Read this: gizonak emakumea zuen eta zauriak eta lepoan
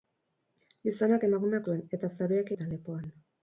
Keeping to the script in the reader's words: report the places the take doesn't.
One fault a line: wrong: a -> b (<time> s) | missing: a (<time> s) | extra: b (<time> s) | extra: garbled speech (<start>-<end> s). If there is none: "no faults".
no faults